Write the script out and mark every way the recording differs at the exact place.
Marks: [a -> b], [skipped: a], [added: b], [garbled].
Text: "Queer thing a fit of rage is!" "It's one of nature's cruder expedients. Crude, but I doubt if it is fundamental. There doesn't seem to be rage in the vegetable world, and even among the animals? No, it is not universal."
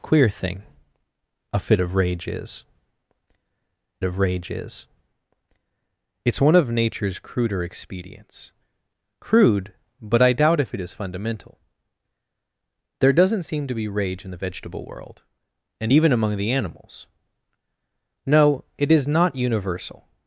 "Queer thing a fit of rage is!" [added: of rage is] "It's one of nature's cruder expedients. Crude, but I doubt if it is fundamental. There doesn't seem to be rage in the vegetable world, and even among the animals? No, it is not universal."